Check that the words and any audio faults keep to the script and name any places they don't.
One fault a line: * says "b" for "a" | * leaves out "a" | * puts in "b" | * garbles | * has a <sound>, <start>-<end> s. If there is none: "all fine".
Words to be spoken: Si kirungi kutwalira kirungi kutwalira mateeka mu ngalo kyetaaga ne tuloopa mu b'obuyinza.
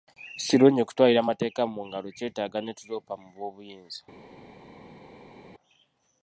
* leaves out "kirungi kutwalira"